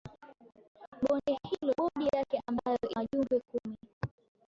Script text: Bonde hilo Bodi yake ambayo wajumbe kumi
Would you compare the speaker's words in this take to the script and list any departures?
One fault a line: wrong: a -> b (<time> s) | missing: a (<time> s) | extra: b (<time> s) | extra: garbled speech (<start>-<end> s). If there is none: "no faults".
no faults